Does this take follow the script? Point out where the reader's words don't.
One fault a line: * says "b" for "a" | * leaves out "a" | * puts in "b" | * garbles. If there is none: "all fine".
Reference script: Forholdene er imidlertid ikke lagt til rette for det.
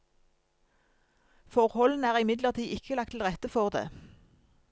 all fine